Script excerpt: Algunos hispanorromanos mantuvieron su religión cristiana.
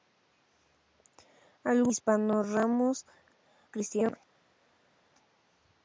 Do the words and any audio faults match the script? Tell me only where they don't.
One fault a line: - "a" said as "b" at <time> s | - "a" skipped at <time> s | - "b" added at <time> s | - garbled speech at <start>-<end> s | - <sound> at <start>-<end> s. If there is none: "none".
- "mantuvieron su religión" skipped at 3.0 s